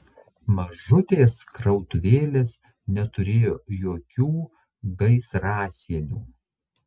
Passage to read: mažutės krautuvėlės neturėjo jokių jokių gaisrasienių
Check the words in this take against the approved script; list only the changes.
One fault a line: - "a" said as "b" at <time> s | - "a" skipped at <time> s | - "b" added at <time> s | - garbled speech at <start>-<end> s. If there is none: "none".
- "jokių" skipped at 4.3 s